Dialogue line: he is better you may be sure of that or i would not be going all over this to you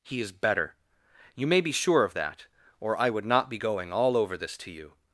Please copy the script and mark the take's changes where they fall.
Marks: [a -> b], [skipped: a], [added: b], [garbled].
he is better you may be sure of that or i would not be going all over this to you